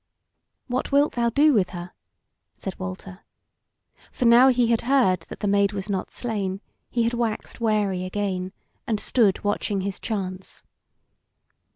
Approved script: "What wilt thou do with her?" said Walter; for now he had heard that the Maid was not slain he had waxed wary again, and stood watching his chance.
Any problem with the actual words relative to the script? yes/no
no